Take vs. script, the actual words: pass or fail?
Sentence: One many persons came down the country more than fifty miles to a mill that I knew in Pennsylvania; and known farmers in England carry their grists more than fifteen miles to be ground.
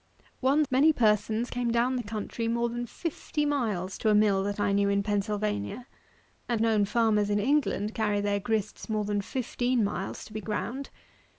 pass